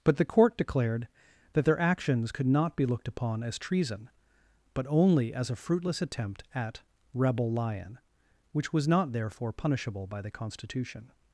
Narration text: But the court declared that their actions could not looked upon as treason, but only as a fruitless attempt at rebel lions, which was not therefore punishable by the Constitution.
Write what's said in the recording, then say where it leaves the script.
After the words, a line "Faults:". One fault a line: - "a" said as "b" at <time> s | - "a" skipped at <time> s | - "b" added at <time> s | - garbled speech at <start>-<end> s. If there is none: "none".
But the court declared that their actions could not be looked upon as treason, but only as a fruitless attempt at rebel lion, which was not therefore punishable by the Constitution.
Faults:
- "be" added at 2.8 s
- "lions" said as "lion" at 7.5 s